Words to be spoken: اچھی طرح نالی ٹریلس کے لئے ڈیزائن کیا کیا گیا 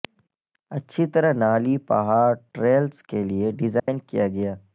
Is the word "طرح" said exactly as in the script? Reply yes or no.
yes